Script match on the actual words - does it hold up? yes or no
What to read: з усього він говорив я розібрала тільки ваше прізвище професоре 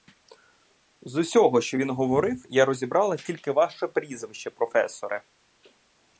no